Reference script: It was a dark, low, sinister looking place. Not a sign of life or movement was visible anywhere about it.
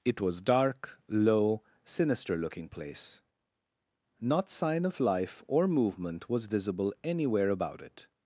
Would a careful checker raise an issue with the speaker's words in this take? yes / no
yes